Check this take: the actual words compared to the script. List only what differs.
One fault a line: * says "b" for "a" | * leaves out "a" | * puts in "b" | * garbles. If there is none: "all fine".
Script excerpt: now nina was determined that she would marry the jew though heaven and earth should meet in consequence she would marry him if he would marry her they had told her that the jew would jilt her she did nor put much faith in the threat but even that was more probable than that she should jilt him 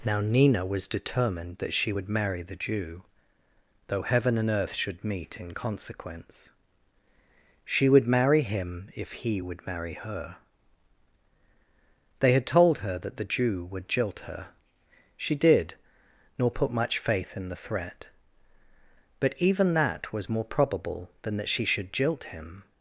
all fine